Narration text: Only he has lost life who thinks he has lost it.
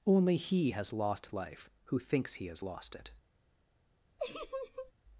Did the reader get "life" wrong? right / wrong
right